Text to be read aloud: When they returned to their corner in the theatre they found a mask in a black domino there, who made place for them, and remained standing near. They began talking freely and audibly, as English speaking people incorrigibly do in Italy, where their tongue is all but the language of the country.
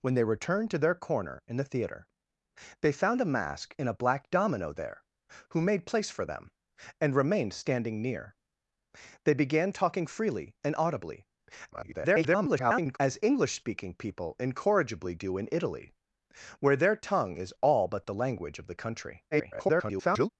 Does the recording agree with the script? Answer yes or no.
no